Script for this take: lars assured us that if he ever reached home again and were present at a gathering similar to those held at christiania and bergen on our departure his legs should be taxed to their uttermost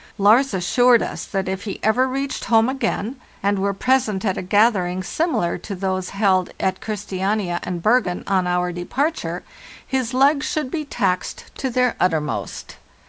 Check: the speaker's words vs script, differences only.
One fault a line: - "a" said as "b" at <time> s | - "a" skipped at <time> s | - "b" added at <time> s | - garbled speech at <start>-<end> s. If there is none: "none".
none